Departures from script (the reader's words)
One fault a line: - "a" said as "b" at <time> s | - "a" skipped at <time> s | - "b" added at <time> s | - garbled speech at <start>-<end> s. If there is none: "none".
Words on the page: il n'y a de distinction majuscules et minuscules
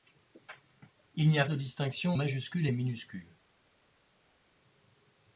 none